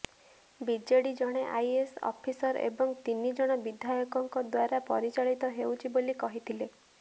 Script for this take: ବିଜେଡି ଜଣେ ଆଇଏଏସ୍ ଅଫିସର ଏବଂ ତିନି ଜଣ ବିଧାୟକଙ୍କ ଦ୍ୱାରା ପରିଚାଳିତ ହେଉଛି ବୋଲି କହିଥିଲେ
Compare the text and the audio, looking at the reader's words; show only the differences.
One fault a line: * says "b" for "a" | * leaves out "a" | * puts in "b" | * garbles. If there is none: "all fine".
all fine